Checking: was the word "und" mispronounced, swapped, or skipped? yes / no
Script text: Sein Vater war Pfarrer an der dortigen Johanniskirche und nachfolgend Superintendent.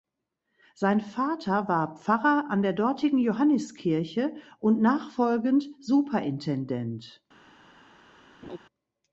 no